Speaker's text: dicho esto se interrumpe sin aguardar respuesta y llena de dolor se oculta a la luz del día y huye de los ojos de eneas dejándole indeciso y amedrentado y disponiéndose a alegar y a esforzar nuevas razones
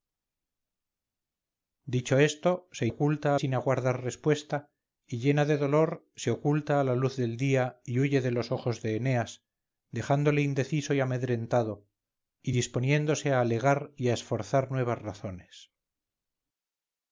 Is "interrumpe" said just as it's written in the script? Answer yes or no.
no